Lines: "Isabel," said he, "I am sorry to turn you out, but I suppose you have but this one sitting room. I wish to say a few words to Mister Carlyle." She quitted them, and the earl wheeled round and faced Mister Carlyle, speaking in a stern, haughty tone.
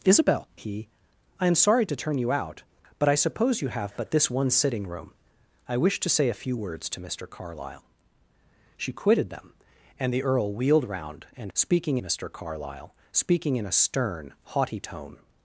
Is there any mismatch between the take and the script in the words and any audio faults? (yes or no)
yes